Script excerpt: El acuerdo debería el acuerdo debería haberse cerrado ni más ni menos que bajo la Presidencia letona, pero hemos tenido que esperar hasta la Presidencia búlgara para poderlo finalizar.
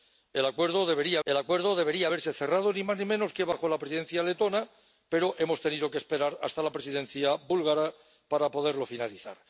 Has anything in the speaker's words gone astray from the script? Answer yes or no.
no